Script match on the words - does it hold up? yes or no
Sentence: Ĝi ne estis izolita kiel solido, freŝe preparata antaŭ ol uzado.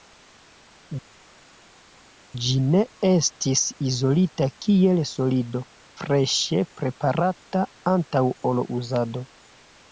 yes